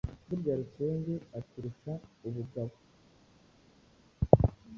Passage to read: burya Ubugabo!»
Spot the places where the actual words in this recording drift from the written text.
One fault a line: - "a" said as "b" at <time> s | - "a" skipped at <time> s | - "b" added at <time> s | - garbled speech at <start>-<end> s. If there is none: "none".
- "Rusenge aturusha" added at 0.6 s